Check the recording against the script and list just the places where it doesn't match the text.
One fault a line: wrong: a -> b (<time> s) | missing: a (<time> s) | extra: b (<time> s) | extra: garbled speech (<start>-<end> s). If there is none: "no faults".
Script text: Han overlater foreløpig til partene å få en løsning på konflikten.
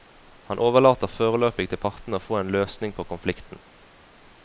no faults